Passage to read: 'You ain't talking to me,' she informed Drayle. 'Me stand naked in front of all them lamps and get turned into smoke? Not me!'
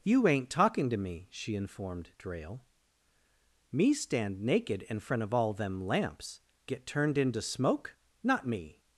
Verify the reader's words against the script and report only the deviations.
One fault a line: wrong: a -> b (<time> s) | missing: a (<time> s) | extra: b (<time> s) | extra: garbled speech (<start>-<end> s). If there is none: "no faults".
missing: and (6.4 s)